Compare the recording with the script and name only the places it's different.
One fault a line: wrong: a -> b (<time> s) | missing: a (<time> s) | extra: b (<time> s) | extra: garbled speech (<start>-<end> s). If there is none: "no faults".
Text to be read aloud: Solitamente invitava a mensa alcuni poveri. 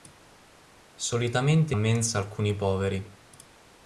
missing: invitava (1.8 s)